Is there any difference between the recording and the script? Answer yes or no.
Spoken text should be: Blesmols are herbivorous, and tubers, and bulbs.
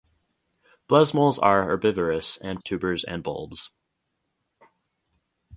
no